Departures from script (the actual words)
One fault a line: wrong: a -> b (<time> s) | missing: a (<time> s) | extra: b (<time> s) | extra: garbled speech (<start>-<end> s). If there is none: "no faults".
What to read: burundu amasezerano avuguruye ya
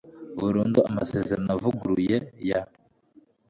no faults